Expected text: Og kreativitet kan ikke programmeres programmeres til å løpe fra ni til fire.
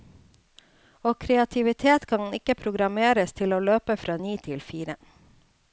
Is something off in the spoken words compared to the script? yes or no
yes